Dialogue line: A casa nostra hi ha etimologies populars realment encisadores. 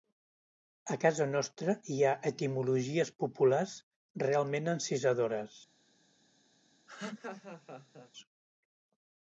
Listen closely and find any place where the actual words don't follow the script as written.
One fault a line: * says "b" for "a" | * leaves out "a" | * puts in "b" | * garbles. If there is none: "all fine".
all fine